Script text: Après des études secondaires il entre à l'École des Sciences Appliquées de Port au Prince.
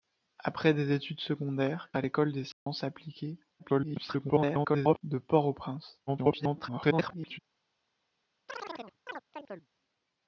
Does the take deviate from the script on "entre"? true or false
true